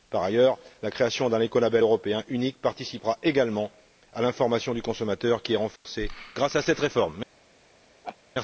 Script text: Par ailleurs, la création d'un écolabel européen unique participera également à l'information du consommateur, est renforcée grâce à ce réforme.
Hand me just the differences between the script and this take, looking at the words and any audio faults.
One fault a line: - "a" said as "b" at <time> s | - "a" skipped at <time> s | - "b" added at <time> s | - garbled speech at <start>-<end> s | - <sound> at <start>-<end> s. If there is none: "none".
- "qui" added at 5.4 s
- dropout at 5.8-5.9 s
- "ce" said as "cette" at 6.6 s
- laugh at 8.0-8.2 s